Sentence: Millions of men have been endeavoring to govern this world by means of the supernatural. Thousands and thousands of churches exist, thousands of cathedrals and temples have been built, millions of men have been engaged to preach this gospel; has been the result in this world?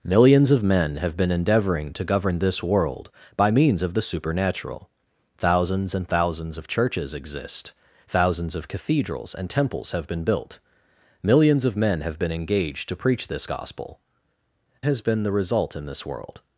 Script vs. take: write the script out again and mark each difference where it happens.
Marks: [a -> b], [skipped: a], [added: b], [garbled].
Millions of men have been endeavoring to govern this world by means of the supernatural. Thousands and thousands of churches exist, thousands of cathedrals and temples have been built, millions of men have been engaged to preach this gospel; has been the result in this world?